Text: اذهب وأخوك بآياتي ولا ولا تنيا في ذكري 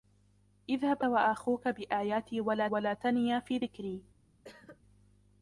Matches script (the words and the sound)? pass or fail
fail